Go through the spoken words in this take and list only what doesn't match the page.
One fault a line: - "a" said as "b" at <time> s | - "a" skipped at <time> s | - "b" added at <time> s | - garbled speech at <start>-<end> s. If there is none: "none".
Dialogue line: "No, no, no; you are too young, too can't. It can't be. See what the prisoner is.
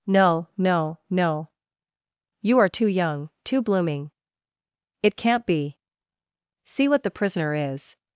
- "can't" said as "blooming" at 3.6 s